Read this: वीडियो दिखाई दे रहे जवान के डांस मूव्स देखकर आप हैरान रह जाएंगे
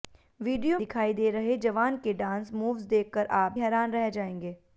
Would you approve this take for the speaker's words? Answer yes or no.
yes